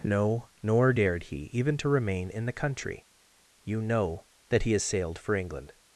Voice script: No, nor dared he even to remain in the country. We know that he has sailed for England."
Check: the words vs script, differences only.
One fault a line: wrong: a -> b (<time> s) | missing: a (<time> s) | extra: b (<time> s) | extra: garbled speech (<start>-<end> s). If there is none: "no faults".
wrong: We -> You (3.6 s)